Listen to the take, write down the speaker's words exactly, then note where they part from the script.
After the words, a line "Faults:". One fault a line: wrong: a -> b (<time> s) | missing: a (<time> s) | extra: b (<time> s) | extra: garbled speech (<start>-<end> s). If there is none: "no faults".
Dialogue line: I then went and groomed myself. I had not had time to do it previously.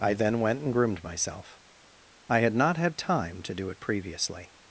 I then went and groomed myself. I had not had time to do it previously.
Faults:
no faults